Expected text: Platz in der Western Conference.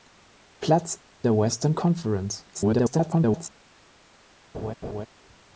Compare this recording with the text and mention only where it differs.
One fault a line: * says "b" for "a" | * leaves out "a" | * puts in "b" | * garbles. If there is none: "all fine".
* leaves out "in"
* garbles